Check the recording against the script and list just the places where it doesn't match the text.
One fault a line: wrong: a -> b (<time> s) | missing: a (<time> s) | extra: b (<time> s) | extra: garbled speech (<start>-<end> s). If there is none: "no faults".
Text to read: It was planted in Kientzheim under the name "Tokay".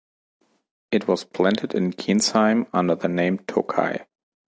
no faults